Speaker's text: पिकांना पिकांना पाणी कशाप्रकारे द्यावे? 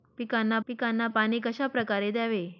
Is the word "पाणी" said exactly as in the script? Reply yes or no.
yes